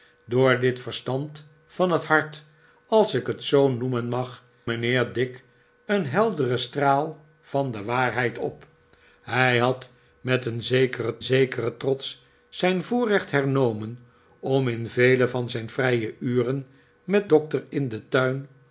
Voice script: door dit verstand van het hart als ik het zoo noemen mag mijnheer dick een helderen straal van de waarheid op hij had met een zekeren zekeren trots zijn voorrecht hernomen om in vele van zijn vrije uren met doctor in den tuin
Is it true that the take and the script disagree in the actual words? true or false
false